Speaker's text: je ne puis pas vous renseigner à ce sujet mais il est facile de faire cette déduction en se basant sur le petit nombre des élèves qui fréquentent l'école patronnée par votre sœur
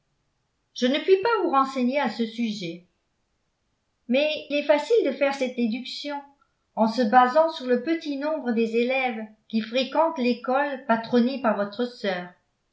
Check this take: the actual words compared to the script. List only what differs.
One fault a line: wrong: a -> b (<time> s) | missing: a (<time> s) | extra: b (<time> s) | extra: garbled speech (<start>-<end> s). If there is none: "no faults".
missing: il (4.5 s)